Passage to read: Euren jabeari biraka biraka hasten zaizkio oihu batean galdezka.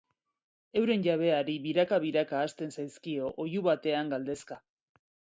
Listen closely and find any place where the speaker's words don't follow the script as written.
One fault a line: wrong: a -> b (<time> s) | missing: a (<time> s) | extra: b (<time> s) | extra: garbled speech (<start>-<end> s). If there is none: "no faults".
no faults